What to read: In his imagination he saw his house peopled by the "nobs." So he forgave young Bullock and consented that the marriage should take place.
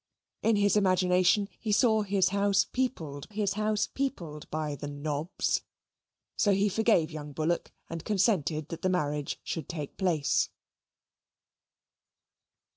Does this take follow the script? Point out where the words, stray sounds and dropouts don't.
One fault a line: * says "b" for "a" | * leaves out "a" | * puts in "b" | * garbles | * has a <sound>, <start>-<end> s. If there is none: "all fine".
* puts in "his house peopled"